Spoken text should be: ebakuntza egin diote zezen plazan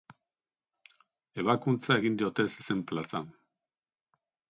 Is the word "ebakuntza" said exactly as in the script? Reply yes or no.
yes